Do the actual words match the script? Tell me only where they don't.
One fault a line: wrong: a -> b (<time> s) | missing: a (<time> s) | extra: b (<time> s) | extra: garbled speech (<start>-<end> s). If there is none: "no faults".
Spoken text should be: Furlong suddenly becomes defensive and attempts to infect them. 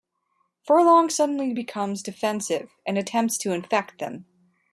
no faults